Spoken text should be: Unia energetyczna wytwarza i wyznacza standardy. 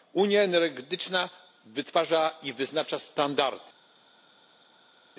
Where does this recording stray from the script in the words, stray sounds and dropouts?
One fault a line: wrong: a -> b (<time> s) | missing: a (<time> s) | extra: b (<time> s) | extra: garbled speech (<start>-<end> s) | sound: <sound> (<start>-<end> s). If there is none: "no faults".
no faults